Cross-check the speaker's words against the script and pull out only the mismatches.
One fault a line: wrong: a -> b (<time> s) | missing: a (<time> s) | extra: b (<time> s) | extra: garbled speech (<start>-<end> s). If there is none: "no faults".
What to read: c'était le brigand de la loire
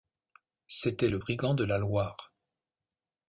no faults